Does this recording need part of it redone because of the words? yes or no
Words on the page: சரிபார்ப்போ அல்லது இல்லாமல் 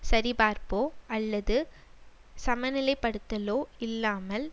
yes